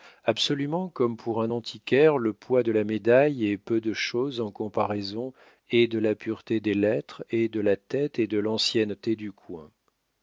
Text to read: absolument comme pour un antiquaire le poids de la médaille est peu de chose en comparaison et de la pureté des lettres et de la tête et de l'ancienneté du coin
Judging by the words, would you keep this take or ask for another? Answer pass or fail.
pass